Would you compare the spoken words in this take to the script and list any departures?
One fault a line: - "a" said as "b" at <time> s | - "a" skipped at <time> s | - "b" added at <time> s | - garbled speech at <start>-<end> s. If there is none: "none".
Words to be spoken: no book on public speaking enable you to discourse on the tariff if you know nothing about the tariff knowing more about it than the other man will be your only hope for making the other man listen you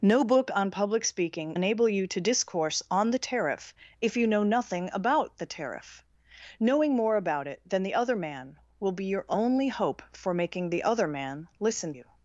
none